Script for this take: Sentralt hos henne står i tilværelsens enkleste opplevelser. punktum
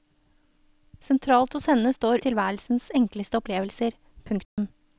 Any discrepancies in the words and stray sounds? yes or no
yes